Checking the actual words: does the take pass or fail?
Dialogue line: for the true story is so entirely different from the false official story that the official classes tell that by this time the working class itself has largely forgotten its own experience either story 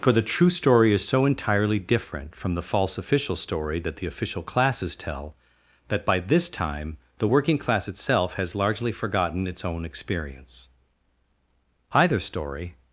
pass